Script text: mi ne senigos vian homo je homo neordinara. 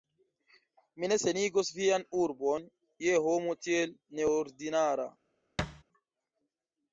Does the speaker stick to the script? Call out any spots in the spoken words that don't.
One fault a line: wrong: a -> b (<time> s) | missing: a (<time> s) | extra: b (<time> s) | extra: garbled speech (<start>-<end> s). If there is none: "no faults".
wrong: homo -> urbon (2.2 s)
extra: tiel (3.7 s)